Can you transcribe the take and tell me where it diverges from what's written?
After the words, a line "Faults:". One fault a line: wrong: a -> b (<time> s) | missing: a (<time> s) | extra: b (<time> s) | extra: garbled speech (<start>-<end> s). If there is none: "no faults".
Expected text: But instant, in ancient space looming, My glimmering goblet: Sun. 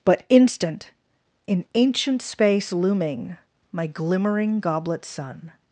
But instant, in ancient space looming, My glimmering goblet: Sun.
Faults:
no faults